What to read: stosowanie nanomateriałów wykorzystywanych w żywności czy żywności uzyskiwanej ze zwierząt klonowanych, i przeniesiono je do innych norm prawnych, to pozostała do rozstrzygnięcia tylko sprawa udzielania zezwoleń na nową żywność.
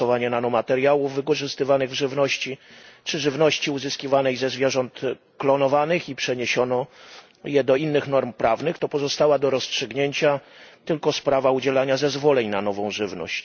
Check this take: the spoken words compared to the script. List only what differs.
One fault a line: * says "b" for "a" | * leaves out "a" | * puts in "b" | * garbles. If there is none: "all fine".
all fine